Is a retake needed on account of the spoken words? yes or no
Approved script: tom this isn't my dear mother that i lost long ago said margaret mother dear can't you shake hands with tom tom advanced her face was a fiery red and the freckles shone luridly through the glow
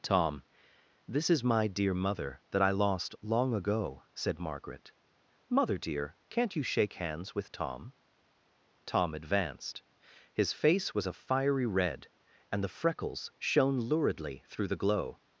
yes